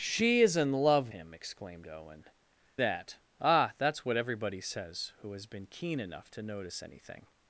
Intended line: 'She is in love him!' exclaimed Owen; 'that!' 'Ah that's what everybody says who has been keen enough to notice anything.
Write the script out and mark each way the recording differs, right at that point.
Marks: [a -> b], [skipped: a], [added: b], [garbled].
'She is in love him!' exclaimed Owen; 'that!' 'Ah that's what everybody says who has been keen enough to notice anything.